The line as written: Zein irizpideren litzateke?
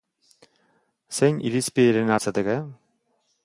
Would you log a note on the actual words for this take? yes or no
no